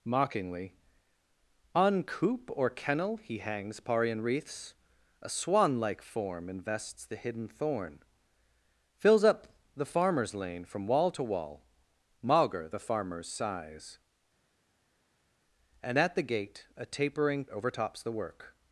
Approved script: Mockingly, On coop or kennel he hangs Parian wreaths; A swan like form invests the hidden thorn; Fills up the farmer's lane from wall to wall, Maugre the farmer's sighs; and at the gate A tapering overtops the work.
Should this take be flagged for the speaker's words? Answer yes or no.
no